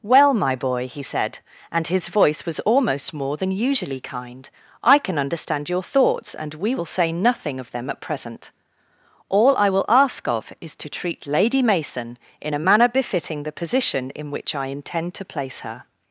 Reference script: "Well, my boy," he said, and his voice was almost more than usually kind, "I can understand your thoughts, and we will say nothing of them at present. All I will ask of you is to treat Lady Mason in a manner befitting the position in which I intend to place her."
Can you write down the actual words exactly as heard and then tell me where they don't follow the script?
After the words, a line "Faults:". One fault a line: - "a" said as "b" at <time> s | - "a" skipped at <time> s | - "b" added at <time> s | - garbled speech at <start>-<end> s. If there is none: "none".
"Well, my boy," he said, and his voice was almost more than usually kind, "I can understand your thoughts, and we will say nothing of them at present. All I will ask of is to treat Lady Mason in a manner befitting the position in which I intend to place her."
Faults:
- "you" skipped at 10.5 s